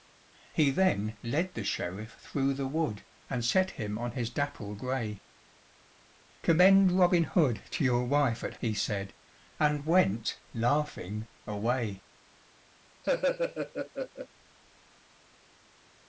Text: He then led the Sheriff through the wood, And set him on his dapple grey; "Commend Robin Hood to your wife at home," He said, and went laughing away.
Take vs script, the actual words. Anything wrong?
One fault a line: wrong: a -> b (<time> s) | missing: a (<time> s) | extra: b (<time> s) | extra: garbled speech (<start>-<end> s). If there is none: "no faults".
missing: home (8.6 s)